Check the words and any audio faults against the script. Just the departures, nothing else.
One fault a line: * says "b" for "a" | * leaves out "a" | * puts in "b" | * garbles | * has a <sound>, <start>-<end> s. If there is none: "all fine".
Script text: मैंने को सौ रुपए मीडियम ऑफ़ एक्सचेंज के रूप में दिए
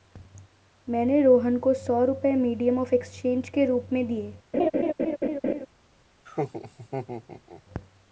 * puts in "रोहन"
* has a laugh, 4.5-5.7 s
* has a laugh, 6.2-7.6 s